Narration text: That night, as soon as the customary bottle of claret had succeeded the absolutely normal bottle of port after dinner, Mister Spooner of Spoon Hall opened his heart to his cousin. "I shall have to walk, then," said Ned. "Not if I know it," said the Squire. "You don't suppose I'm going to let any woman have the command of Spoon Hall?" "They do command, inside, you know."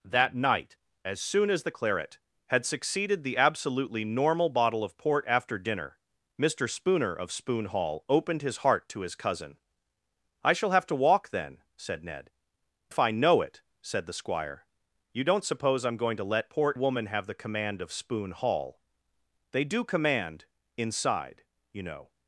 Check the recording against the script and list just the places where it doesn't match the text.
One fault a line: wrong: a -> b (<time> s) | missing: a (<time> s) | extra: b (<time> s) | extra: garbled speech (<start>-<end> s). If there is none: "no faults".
missing: customary bottle of (1.7 s)
missing: Not (12.3 s)
wrong: any -> port (16.5 s)